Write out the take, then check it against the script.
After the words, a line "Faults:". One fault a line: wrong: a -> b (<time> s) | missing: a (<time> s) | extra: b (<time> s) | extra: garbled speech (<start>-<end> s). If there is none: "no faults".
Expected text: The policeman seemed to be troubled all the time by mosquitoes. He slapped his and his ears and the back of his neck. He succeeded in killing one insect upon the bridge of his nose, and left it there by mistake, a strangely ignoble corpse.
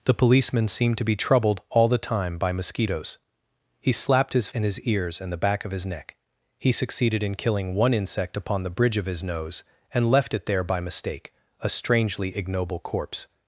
The policeman seemed to be troubled all the time by mosquitoes. He slapped his and his ears and the back of his neck. He succeeded in killing one insect upon the bridge of his nose, and left it there by mistake, a strangely ignoble corpse.
Faults:
no faults